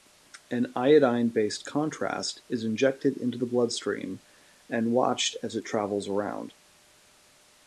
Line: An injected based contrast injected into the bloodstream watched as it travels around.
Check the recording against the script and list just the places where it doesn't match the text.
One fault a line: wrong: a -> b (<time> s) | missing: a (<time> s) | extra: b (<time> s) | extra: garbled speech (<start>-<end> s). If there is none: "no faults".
wrong: injected -> iodine (0.8 s)
extra: is (2.5 s)
extra: and (4.7 s)